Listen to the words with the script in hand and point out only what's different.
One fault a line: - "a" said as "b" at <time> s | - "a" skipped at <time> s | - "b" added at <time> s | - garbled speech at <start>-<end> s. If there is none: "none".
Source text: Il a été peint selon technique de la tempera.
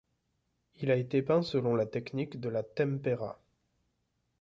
- "la" added at 1.8 s